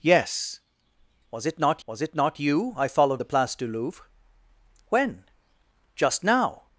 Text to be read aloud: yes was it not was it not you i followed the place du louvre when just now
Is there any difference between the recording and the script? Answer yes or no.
no